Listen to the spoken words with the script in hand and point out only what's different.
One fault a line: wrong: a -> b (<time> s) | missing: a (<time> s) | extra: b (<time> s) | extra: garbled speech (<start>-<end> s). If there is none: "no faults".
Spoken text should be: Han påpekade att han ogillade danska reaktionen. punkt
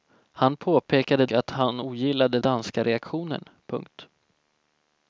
no faults